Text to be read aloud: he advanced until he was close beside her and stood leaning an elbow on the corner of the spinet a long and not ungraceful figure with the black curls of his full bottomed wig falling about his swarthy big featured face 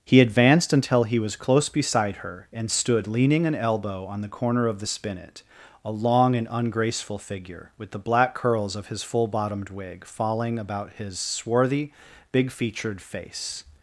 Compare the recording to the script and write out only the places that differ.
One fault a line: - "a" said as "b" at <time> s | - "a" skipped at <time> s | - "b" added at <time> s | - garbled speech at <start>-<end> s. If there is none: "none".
- "not" skipped at 6.5 s